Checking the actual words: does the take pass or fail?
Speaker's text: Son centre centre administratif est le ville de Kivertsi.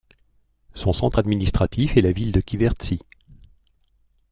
fail